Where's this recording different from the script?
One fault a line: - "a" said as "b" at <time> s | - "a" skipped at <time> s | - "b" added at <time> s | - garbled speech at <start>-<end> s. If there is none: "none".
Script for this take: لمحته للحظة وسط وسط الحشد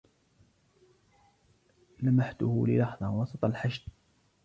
- "وسط" skipped at 3.5 s